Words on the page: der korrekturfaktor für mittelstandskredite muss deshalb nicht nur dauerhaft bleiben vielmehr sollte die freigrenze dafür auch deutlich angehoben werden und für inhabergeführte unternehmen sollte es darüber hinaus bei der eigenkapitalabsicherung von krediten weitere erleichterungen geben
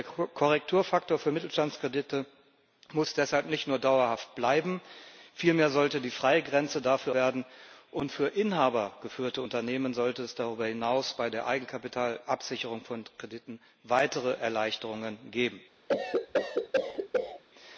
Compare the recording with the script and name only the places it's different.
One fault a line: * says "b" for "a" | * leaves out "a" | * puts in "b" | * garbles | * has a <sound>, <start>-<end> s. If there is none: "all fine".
* leaves out "auch deutlich angehoben"
* has a cough, 15.9-17.4 s